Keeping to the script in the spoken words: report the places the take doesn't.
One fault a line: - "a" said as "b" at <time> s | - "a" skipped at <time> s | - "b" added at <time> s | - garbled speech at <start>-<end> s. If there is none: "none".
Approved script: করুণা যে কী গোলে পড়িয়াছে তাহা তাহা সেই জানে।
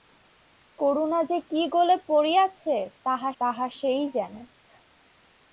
none